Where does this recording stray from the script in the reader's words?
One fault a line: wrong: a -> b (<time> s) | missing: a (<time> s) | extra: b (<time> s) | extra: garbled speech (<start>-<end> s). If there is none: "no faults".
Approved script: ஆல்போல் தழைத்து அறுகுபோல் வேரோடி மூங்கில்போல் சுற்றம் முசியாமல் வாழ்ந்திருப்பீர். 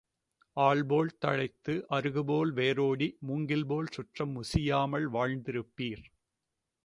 no faults